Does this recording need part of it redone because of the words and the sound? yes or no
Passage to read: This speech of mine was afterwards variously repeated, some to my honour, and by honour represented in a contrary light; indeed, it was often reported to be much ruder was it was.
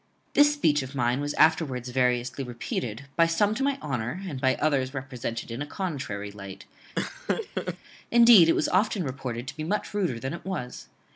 yes